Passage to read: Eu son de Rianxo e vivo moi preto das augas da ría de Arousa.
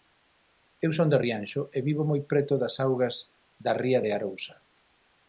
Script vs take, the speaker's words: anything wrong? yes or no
no